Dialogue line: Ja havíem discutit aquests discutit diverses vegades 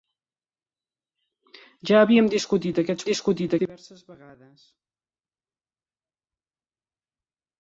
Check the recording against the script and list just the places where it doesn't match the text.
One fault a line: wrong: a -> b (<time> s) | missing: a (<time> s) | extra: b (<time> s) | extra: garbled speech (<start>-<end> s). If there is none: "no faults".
no faults